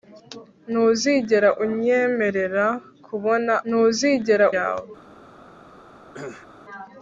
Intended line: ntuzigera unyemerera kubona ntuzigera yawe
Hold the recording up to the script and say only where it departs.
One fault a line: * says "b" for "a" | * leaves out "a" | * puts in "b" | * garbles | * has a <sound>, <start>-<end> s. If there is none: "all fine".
* has a cough, 6.1-6.5 s